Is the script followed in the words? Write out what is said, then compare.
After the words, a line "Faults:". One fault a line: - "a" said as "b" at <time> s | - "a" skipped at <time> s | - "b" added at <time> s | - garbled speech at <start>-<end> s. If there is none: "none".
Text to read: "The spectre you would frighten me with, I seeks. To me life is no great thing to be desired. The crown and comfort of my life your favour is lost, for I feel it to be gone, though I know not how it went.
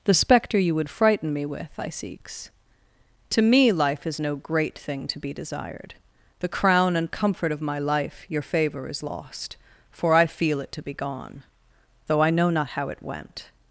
"The spectre you would frighten me with, I seeks. To me life is no great thing to be desired. The crown and comfort of my life your favour is lost, for I feel it to be gone, though I know not how it went.
Faults:
none